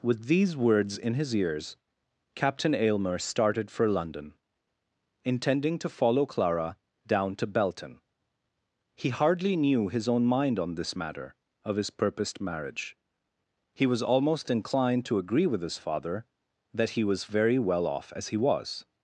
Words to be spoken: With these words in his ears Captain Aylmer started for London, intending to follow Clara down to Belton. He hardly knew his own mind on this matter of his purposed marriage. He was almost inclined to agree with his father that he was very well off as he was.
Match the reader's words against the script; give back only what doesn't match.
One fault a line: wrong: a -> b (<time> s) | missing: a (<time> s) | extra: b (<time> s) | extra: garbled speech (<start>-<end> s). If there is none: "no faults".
no faults